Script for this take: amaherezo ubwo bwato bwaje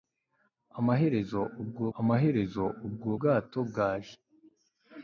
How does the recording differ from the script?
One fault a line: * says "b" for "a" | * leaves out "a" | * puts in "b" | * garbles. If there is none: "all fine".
* puts in "amaherezo ubwo"